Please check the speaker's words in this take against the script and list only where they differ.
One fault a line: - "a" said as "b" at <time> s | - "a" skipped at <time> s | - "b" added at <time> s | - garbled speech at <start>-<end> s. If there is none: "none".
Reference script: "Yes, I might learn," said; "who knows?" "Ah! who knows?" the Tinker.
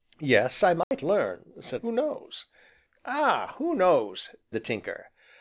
none